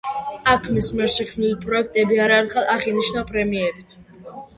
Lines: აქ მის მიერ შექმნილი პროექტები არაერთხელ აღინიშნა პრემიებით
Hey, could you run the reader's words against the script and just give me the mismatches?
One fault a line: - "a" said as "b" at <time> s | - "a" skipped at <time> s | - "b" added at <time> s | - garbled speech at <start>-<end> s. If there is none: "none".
none